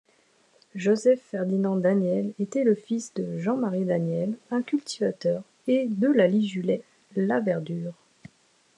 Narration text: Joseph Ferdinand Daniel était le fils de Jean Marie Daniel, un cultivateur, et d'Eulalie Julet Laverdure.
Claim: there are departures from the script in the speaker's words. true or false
false